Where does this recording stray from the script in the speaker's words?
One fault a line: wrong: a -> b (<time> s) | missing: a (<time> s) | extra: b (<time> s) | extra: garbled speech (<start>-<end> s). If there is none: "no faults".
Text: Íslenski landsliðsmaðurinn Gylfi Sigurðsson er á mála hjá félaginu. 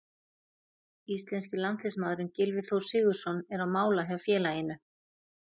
extra: Þór (2.7 s)